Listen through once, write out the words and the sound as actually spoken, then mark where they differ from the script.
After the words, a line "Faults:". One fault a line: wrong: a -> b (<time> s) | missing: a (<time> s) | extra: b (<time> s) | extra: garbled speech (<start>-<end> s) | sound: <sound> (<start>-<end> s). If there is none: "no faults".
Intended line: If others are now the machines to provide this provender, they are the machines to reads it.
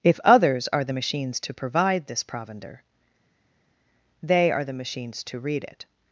If others are the machines to provide this provender, they are the machines to read it.
Faults:
missing: now (0.8 s)
wrong: reads -> read (5.4 s)